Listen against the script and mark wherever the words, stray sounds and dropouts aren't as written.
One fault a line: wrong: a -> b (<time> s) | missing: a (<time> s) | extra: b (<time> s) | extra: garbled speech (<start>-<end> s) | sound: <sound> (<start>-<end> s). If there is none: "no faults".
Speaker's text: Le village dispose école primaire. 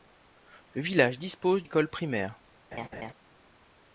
sound: laugh (2.7-3.1 s)